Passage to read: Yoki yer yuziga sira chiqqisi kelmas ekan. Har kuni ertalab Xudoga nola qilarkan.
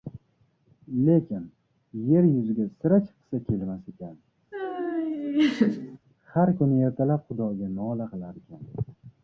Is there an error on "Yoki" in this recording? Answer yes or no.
yes